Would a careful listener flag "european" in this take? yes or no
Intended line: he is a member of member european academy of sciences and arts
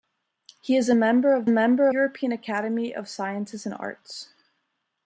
no